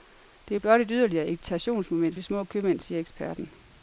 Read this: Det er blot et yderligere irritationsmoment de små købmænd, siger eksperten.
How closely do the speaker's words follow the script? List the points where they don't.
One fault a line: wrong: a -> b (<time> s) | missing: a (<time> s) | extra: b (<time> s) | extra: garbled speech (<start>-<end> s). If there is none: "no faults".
no faults